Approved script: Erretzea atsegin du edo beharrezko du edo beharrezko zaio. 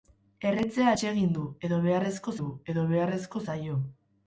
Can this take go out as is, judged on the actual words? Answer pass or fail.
pass